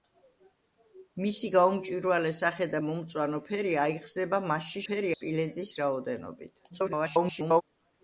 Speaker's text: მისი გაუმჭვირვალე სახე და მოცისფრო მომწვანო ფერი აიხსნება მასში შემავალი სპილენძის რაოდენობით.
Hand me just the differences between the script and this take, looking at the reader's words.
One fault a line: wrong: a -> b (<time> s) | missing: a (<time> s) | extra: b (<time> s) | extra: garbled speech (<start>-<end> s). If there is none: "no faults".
missing: მოცისფრო (2.8 s)
wrong: შემავალი -> ფერი (4.9 s)
extra: garbled speech (6.7-7.6 s)